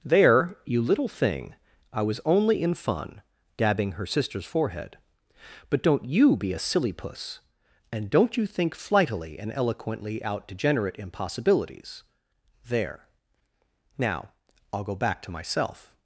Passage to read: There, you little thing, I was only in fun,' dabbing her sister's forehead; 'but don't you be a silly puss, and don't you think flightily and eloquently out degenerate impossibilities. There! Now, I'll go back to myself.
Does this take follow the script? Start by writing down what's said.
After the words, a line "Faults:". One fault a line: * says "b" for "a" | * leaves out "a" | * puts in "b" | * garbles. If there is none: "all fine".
There, you little thing, I was only in fun,' dabbing her sister's forehead; 'but don't you be a silly puss, and don't you think flightily and eloquently out degenerate impossibilities. There! Now, I'll go back to myself.
Faults:
all fine